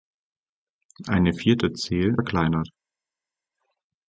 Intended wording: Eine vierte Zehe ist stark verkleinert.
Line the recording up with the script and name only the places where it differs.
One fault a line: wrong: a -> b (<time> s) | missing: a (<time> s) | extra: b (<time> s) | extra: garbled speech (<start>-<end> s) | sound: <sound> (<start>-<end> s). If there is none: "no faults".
missing: ist stark (2.2 s)